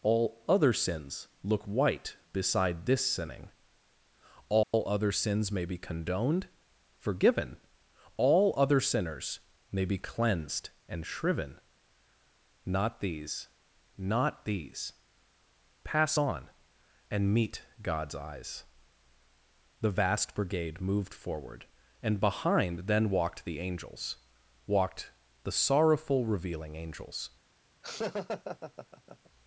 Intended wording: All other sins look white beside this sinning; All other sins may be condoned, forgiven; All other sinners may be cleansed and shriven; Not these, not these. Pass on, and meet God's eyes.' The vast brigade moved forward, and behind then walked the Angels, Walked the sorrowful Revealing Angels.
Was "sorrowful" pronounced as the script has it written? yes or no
yes